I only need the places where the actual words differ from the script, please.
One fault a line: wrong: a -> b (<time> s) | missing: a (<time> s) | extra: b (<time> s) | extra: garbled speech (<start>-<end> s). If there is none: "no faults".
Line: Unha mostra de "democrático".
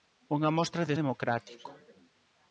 no faults